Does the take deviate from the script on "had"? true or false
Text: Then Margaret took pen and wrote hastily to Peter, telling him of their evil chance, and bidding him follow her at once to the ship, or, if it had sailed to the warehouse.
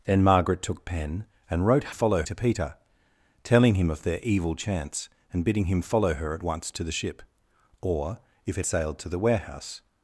true